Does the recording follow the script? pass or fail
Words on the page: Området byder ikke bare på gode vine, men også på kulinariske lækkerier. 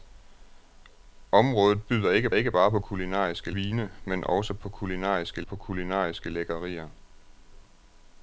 fail